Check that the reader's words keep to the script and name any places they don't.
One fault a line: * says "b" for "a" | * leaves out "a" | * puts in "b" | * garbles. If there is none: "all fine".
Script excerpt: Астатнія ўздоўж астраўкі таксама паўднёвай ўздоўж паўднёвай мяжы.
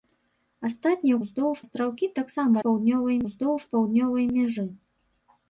all fine